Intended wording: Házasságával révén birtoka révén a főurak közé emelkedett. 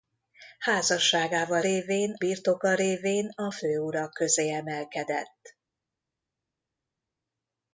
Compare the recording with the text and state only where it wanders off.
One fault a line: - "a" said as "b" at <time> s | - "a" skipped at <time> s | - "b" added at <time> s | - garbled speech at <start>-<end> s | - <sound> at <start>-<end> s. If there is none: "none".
none